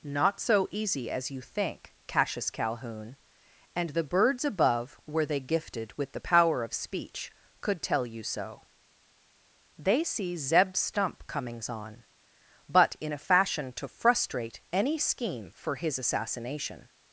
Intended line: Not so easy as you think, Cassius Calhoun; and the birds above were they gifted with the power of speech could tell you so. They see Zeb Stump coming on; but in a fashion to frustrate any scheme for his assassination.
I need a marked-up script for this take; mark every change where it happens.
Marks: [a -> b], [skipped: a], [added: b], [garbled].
Not so easy as you think, Cassius Calhoun; and the birds above were they gifted with the power of speech could tell you so. They see Zeb Stump [coming -> comings] on; but in a fashion to frustrate any scheme for his assassination.